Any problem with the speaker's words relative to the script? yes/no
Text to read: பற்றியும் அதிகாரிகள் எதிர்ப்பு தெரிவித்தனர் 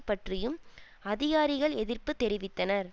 no